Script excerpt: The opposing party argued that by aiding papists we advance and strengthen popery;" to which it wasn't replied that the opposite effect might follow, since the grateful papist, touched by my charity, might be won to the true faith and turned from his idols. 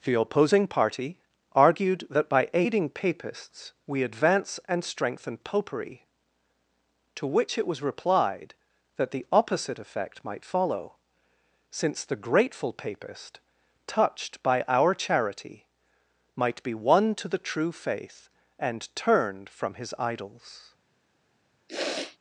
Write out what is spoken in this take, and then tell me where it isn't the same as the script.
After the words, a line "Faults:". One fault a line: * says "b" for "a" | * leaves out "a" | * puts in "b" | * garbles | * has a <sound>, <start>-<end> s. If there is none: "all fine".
The opposing party argued that by aiding papists we advance and strengthen popery;" to which it was replied that the opposite effect might follow, since the grateful papist, touched by our charity, might be won to the true faith and turned from his idols.
Faults:
* says "was" for "wasn't"
* says "our" for "my"
* has a sniff, 21.7-22.2 s